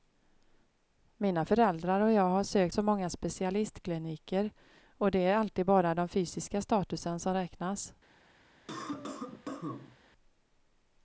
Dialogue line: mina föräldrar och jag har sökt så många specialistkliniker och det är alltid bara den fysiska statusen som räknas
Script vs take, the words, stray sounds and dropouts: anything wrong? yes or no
yes